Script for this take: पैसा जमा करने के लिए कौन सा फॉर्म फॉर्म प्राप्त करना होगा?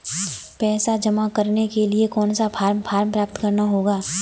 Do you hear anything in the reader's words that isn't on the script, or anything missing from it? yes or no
no